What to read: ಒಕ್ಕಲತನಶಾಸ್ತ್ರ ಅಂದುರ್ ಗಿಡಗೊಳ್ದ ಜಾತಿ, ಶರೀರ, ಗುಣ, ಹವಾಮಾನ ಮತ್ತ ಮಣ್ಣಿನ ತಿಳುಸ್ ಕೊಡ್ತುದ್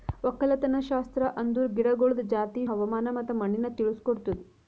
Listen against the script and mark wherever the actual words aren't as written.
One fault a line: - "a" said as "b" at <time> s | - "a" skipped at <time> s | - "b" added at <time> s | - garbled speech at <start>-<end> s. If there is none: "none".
- "ಶರೀರ ಗುಣ" skipped at 2.6 s